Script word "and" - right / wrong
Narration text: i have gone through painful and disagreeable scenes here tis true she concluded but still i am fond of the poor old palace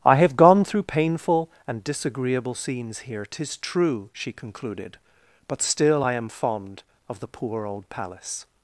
right